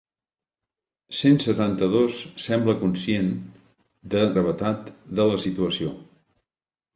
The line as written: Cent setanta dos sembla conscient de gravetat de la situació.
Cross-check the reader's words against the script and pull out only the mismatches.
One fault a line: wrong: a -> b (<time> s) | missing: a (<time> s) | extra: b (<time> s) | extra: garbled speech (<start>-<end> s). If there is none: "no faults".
no faults